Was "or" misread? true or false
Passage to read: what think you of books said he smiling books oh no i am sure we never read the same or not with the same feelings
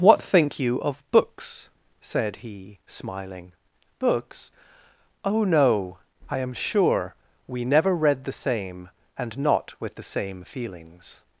true